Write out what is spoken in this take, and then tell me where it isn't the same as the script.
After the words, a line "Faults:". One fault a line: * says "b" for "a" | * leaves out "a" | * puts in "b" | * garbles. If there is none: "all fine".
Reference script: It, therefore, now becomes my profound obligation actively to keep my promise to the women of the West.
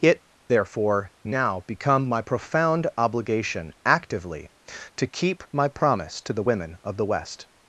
It, therefore, now become my profound obligation actively to keep my promise to the women of the West.
Faults:
* says "become" for "becomes"